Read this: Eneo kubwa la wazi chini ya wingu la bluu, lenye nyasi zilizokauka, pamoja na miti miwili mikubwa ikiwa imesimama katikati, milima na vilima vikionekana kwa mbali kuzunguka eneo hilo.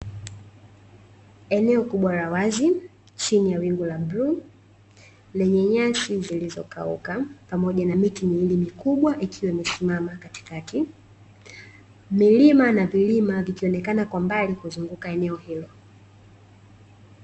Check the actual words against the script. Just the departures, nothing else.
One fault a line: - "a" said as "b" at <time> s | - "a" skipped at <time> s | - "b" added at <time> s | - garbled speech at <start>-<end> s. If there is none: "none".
none